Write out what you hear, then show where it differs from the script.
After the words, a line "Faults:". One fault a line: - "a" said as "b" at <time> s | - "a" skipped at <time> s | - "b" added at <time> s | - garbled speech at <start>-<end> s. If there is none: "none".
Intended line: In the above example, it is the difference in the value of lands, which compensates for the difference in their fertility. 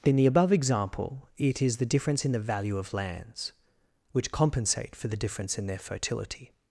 In the above example, it is the difference in the value of lands, which compensate for the difference in their fertility.
Faults:
- "compensates" said as "compensate" at 4.3 s